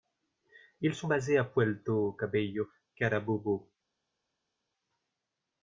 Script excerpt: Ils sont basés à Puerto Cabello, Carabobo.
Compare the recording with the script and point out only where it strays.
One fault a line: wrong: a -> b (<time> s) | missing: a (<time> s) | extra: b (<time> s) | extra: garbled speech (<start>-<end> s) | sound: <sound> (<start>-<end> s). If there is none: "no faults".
no faults